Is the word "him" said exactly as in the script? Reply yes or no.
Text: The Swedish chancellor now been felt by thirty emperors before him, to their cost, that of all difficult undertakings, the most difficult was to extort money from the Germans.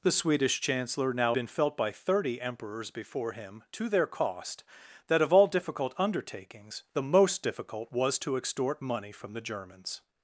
yes